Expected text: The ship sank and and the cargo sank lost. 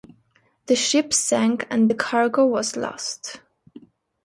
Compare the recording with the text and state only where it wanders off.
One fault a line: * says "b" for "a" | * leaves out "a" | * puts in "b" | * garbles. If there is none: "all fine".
* leaves out "and"
* says "was" for "sank"